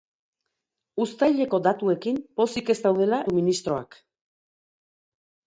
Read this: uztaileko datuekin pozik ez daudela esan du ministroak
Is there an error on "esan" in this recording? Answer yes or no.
yes